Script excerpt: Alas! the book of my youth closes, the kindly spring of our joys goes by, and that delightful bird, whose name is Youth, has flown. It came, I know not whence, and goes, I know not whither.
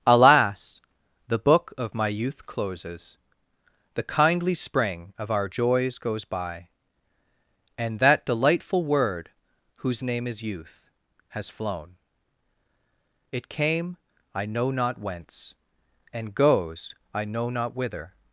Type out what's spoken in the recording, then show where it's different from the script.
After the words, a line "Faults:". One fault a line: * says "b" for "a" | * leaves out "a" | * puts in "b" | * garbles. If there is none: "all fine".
Alas! the book of my youth closes, the kindly spring of our joys goes by, and that delightful word, whose name is Youth, has flown. It came, I know not whence, and goes, I know not whither.
Faults:
* says "word" for "bird"